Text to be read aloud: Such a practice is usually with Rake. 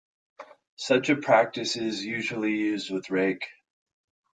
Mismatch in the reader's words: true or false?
true